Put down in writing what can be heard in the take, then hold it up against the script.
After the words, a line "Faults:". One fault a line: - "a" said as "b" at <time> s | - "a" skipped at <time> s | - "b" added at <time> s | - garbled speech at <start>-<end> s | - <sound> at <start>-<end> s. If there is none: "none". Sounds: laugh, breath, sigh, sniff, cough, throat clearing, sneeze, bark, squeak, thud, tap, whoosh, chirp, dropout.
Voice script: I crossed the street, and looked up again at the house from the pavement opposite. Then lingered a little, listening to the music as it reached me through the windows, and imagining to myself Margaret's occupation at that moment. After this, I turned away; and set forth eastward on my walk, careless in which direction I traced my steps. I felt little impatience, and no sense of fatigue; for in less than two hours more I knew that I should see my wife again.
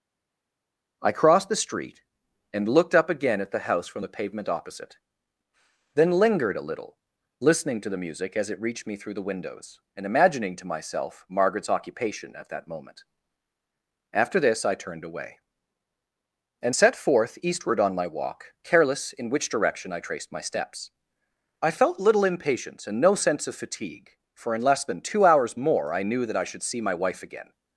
I crossed the street, and looked up again at the house from the pavement opposite. Then lingered a little, listening to the music as it reached me through the windows, and imagining to myself Margaret's occupation at that moment. After this, I turned away; and set forth eastward on my walk, careless in which direction I traced my steps. I felt little impatience, and no sense of fatigue; for in less than two hours more I knew that I should see my wife again.
Faults:
none